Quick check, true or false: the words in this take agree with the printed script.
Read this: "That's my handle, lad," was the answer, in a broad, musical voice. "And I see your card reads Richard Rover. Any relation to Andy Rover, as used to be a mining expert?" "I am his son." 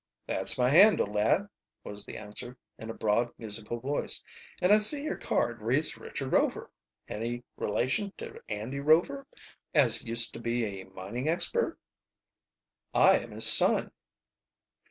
true